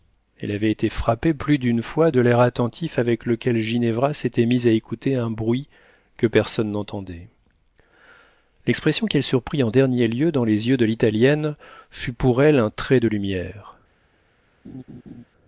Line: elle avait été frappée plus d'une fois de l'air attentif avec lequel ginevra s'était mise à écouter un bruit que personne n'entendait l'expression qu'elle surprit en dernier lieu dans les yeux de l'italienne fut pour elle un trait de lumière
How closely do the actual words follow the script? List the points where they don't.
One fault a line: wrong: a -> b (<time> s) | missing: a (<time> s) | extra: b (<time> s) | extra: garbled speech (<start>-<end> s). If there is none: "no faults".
no faults